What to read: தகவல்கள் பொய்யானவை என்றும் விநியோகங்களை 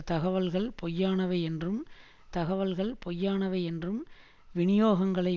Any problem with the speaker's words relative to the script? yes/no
yes